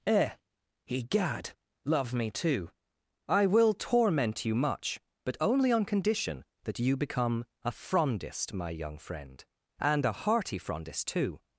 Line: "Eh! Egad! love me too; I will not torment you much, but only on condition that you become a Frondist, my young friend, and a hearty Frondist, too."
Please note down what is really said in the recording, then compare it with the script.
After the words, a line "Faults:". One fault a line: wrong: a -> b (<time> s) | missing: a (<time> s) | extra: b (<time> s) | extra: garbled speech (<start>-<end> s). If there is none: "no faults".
"Eh! Egad! love me too; I will torment you much, but only on condition that you become a Frondist, my young friend, and a hearty Frondist, too."
Faults:
missing: not (3.7 s)